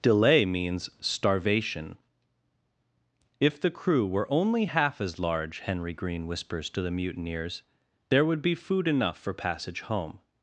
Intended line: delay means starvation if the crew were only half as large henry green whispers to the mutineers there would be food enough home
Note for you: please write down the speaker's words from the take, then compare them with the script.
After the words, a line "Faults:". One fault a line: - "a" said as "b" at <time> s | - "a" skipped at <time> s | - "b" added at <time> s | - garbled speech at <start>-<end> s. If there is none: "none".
delay means starvation if the crew were only half as large henry green whispers to the mutineers there would be food enough for passage home
Faults:
- "for passage" added at 9.2 s